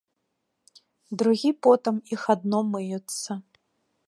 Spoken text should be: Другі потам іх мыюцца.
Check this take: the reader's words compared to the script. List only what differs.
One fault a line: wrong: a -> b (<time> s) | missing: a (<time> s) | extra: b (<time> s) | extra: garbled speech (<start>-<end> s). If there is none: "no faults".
extra: адно (2.4 s)